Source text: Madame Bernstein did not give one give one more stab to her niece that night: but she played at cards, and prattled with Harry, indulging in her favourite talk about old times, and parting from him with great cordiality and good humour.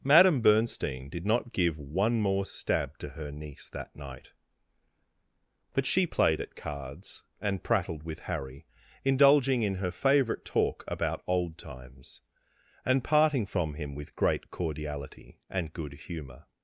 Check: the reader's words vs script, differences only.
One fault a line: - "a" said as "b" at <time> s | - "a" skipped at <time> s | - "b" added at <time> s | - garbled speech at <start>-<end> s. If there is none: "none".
- "give one" skipped at 2.2 s